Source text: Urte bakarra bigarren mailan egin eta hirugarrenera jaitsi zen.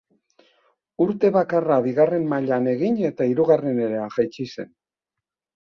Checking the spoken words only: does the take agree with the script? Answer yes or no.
yes